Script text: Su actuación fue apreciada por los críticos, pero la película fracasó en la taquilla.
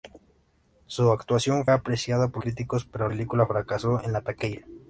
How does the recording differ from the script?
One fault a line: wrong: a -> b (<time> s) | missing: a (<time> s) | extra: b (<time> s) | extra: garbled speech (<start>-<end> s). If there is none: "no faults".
missing: fue (1.7 s)
missing: los (2.4 s)
missing: la (3.1 s)